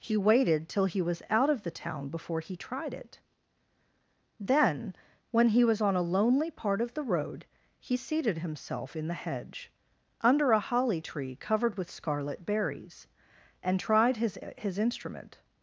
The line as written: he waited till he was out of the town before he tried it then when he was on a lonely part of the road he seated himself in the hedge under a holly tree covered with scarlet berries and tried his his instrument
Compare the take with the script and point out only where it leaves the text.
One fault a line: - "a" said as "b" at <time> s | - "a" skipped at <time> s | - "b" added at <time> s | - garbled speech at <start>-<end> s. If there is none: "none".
none